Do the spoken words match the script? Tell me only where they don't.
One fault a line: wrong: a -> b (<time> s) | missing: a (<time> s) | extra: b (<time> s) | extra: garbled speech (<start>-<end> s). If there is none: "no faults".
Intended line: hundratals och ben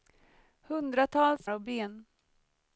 no faults